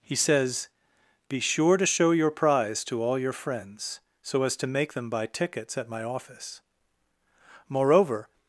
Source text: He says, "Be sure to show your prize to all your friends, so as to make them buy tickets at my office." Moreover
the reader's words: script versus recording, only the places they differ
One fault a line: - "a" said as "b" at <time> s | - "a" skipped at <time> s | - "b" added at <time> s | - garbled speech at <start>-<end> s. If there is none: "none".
none